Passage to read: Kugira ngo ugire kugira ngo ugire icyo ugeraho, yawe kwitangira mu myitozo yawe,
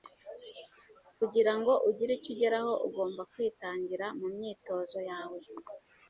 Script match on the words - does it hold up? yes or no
no